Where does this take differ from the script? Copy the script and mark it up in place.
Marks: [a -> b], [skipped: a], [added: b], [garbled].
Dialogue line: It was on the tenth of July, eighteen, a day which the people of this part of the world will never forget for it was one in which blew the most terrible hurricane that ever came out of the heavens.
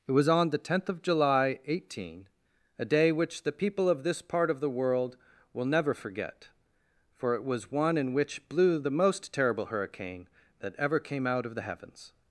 It was on the tenth of July, eighteen, a day which the people of this part of the world will never forget for it was one in which blew the most terrible hurricane that ever came out of the heavens.